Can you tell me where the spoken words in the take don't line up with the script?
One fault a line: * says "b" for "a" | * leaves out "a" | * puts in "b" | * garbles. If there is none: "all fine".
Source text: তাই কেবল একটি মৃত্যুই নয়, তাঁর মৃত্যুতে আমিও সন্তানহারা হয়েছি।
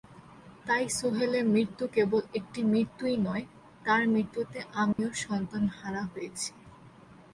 * puts in "সোহেলের মৃত্যু"